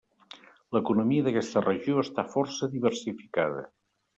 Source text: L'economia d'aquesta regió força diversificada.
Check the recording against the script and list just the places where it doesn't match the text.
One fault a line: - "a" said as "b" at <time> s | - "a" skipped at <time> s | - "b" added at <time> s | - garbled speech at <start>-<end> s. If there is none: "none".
- "està" added at 2.0 s